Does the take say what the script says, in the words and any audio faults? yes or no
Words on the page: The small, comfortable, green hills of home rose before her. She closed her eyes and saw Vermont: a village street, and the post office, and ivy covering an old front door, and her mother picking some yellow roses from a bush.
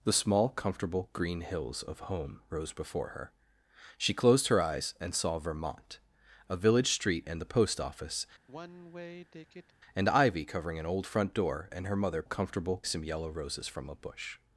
no